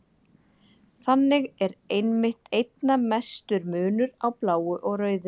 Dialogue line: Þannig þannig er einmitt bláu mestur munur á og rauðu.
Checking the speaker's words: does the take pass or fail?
fail